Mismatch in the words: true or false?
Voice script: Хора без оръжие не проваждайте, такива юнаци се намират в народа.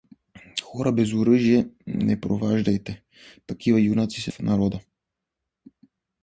true